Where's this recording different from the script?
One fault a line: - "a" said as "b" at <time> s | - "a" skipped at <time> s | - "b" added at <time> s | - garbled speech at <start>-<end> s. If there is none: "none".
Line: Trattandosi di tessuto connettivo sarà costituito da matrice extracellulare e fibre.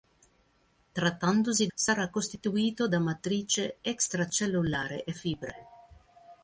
- "di tessuto connettivo" skipped at 1.7 s